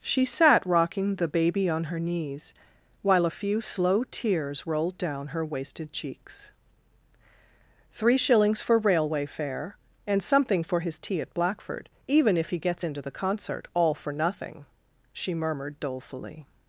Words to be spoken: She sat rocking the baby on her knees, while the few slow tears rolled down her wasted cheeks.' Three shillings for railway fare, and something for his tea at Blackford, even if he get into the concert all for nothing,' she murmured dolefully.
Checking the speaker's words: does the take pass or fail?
fail